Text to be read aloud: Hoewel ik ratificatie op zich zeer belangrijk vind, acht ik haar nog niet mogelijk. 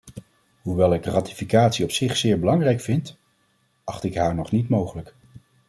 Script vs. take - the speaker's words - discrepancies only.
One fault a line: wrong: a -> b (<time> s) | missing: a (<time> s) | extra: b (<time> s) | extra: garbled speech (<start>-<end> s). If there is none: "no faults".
no faults